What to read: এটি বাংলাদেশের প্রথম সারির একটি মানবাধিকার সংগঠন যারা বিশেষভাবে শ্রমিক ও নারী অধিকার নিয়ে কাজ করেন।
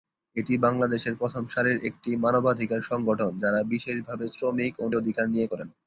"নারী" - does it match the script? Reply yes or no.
no